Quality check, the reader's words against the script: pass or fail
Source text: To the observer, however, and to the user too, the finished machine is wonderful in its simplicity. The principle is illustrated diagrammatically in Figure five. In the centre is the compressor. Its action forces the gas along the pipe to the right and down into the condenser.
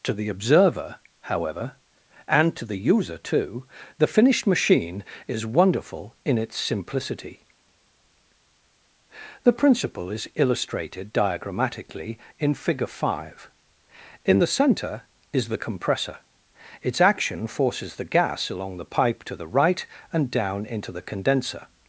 pass